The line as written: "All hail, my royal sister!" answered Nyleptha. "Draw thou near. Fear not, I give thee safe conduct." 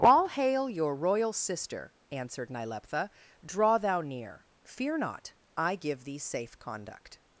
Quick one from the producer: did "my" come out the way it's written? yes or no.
no